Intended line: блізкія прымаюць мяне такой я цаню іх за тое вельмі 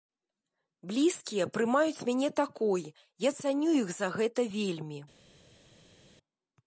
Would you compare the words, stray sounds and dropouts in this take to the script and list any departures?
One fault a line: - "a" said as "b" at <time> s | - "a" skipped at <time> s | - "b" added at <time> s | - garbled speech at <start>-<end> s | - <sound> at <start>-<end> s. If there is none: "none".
- "тое" said as "гэта" at 4.2 s